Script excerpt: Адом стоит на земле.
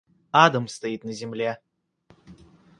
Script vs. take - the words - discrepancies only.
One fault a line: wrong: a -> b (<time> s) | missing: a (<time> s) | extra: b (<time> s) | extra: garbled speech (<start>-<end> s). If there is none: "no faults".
no faults